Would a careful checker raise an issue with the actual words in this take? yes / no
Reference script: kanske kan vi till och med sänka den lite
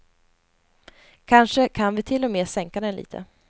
no